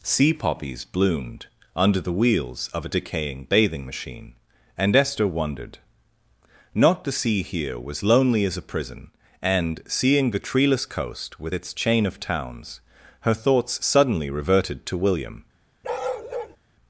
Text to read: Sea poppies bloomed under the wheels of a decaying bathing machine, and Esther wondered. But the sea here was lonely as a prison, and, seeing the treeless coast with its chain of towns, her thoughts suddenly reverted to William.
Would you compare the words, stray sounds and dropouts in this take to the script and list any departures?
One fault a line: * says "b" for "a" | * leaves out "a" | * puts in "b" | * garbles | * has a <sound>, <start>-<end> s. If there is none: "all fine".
* says "Not" for "But"
* has a bark, 15.8-16.6 s